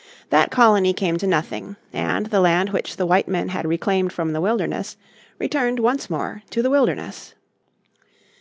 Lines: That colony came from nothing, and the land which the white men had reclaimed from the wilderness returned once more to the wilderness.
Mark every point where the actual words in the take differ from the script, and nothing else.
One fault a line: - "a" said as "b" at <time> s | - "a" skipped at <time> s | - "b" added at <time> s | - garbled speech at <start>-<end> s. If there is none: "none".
- "from" said as "to" at 1.2 s